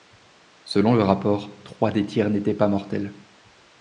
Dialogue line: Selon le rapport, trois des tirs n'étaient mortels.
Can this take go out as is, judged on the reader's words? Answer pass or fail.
fail